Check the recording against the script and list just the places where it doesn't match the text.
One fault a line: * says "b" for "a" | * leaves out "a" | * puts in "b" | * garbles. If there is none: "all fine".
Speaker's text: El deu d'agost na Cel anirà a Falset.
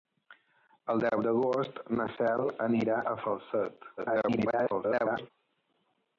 * garbles